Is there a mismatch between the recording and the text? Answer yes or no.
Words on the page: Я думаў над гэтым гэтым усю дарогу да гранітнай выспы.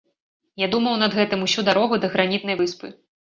yes